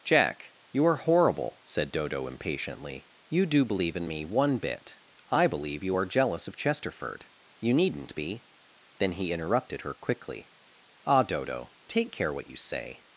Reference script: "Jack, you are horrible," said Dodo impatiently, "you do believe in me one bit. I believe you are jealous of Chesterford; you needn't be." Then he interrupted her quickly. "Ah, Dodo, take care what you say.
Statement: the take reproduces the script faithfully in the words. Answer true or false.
true